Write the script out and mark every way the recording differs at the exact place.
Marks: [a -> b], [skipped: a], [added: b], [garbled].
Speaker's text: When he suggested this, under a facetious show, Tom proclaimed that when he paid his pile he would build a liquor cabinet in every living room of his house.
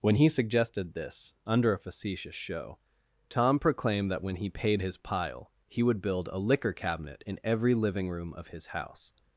When he suggested this, under a facetious show, Tom proclaimed that when he paid his pile he would build a liquor cabinet in every living room of his house.